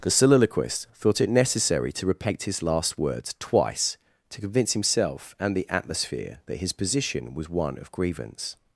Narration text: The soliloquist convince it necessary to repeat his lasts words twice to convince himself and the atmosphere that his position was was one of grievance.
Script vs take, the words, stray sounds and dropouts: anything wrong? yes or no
yes